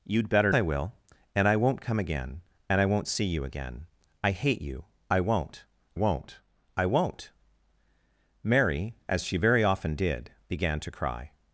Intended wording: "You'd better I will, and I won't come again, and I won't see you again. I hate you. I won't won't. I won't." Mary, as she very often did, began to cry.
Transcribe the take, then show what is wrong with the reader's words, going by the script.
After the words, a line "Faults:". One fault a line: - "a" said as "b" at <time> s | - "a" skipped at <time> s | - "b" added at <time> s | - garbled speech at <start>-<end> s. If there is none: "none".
"You'd better I will, and I won't come again, and I won't see you again. I hate you. I won't won't. I won't." Mary, as she very often did, began to cry.
Faults:
none